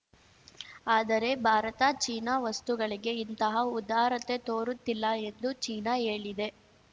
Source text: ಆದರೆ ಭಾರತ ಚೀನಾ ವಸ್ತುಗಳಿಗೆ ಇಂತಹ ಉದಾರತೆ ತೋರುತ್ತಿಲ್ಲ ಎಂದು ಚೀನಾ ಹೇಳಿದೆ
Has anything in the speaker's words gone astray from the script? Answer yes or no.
no